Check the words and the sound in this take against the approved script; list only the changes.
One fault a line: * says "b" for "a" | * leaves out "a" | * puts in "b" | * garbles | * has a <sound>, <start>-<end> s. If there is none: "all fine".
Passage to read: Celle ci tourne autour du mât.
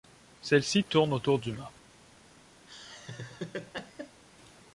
* has a laugh, 2.7-4.2 s